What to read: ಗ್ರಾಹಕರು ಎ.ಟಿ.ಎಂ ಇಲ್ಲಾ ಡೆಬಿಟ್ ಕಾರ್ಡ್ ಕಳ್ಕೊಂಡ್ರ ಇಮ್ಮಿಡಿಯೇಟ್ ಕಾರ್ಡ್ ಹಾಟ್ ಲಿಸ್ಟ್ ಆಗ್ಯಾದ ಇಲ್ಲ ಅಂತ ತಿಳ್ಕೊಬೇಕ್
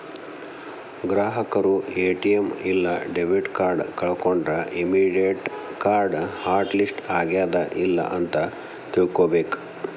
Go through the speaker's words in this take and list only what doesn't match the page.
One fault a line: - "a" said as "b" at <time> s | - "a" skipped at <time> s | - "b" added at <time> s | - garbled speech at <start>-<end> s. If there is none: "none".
none